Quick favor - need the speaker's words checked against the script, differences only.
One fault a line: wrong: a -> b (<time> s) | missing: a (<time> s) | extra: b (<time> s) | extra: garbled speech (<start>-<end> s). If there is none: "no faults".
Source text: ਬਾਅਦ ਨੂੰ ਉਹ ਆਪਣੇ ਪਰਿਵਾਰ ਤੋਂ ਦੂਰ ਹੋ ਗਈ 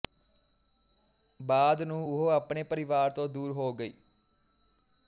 no faults